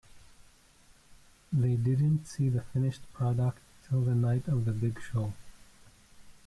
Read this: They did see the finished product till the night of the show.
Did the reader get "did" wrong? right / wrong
wrong